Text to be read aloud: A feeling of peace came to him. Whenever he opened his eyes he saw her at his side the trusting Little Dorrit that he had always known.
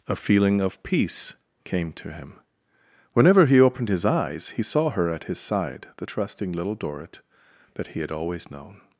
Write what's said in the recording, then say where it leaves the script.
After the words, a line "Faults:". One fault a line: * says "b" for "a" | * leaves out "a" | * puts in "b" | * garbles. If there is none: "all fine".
A feeling of peace came to him. Whenever he opened his eyes he saw her at his side the trusting Little Dorrit that he had always known.
Faults:
all fine